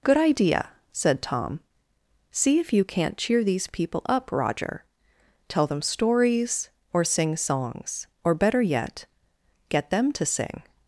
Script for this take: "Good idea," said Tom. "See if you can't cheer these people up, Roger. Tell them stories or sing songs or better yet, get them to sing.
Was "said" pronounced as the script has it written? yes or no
yes